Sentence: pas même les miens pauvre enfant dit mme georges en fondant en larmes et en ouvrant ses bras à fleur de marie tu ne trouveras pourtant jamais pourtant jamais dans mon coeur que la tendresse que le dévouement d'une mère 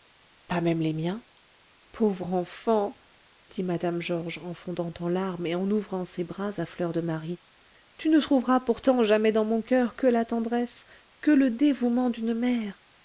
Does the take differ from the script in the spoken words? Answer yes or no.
yes